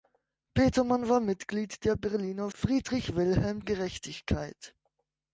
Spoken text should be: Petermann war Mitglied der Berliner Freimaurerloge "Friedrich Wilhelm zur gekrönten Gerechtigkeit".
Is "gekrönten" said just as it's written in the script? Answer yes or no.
no